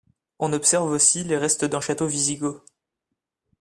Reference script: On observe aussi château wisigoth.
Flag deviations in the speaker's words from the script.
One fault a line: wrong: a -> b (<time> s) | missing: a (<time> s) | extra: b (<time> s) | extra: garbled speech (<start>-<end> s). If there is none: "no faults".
extra: les restes d'un (1.2 s)